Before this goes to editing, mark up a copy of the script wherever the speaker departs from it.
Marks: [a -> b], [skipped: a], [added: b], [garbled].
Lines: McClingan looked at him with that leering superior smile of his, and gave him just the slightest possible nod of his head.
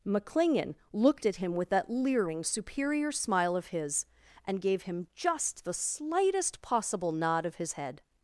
McClingan looked at him with that leering superior smile of his, and gave him just the slightest possible nod of his head.